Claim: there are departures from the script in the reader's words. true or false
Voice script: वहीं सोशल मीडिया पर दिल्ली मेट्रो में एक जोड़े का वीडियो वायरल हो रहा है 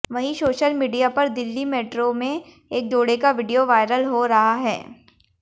false